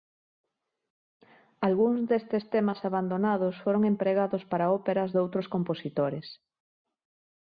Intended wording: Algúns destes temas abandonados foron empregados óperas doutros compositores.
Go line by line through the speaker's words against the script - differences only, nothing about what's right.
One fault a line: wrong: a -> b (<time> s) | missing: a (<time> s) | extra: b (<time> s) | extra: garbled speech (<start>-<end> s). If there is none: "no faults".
extra: para (4.5 s)